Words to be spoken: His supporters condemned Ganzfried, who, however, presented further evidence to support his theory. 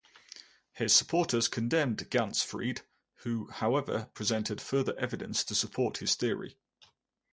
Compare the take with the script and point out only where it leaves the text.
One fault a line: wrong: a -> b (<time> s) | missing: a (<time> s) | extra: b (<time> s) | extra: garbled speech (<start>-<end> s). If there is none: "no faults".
no faults